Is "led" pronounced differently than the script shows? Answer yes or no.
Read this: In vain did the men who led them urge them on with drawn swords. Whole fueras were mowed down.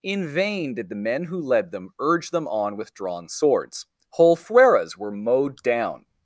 no